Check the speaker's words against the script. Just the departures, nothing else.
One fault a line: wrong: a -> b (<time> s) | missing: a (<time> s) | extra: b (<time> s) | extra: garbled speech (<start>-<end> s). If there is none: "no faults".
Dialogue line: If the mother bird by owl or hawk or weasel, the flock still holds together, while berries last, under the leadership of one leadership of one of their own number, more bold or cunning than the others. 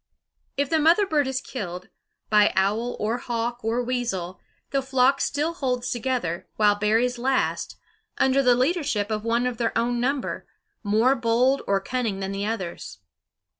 extra: is killed (1.3 s)
missing: leadership of one (9.4 s)